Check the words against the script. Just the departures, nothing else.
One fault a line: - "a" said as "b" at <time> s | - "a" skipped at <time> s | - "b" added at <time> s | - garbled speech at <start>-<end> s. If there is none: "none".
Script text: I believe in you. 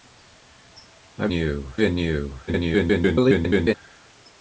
- "believe" said as "you" at 1.3 s
- garbled speech at 2.5-3.7 s